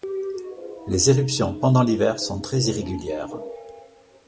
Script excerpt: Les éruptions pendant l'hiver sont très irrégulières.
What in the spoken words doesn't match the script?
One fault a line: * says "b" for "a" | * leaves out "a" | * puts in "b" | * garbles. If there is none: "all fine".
all fine